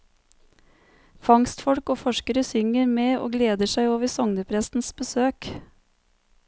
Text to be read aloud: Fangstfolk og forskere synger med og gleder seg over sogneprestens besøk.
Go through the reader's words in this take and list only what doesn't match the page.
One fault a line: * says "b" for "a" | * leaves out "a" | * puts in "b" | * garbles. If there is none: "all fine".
all fine